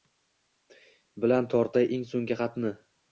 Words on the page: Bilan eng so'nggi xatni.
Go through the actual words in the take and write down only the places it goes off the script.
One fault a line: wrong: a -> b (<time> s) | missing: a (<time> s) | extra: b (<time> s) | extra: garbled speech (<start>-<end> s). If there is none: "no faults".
extra: tortay (1.6 s)